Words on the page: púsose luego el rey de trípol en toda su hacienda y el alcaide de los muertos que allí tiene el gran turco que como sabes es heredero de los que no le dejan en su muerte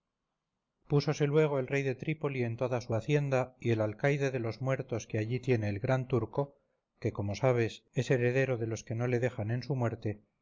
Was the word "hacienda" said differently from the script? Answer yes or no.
no